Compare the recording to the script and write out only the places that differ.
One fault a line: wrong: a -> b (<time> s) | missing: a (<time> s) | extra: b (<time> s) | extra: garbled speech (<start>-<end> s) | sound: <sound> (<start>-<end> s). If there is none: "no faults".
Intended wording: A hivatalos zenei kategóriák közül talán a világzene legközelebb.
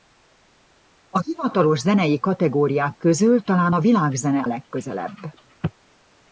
no faults